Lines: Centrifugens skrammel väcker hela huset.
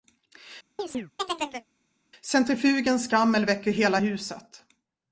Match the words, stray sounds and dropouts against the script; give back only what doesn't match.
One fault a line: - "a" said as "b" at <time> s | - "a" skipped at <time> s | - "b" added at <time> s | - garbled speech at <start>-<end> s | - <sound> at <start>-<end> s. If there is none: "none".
- chirp at 0.8-1.7 s